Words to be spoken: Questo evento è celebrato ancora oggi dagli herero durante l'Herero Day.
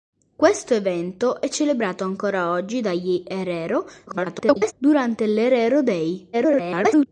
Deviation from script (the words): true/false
true